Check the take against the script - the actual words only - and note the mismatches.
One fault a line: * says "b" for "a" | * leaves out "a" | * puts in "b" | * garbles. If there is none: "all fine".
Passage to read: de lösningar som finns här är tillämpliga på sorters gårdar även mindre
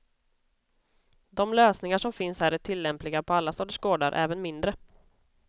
* puts in "alla"